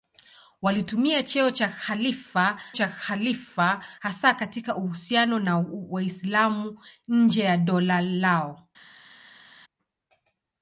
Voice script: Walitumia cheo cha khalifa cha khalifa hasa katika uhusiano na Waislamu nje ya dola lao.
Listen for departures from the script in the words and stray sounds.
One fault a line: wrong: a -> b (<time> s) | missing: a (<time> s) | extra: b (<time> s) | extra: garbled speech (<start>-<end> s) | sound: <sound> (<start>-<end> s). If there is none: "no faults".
no faults